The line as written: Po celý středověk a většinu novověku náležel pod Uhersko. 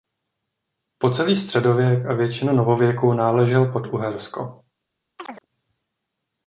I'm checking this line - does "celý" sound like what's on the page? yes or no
yes